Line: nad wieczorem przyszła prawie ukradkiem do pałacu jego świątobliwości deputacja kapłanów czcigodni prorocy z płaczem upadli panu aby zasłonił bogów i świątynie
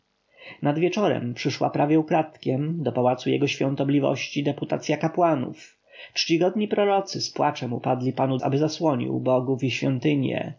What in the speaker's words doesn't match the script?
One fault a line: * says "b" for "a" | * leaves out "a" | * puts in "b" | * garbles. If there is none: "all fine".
all fine